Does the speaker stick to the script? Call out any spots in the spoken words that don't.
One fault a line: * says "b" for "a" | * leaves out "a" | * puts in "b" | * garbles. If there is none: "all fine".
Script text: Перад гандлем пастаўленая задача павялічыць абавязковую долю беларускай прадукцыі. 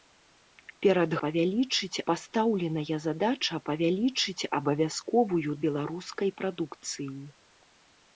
* says "павялічыць" for "гандлем"
* leaves out "долю"